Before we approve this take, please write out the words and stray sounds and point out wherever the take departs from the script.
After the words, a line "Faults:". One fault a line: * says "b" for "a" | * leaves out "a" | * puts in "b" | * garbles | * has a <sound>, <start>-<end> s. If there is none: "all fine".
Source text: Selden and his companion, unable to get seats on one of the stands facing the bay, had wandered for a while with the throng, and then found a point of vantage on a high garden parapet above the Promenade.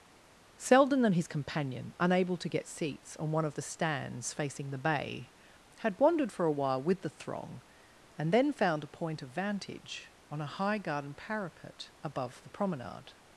Selden and his companion, unable to get seats on one of the stands facing the bay, had wandered for a while with the throng, and then found a point of vantage on a high garden parapet above the Promenade.
Faults:
all fine